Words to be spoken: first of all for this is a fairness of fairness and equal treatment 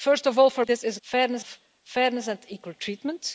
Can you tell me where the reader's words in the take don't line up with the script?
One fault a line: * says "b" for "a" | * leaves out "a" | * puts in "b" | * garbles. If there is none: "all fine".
all fine